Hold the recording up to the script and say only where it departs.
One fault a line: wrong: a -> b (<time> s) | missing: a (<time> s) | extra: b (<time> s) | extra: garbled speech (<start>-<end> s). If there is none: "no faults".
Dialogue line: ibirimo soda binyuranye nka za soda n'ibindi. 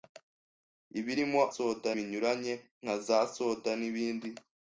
no faults